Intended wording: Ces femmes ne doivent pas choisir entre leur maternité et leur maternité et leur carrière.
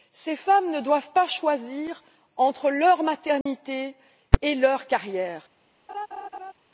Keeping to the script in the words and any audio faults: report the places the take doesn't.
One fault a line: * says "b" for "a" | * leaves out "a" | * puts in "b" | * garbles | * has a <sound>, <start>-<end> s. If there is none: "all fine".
* has a dropout, 3.4-3.5 s
* leaves out "maternité et leur"
* has a laugh, 5.9-6.5 s